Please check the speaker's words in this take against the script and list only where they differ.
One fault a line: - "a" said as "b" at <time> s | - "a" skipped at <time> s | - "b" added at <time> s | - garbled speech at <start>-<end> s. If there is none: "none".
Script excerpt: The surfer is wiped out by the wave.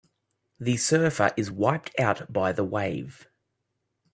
none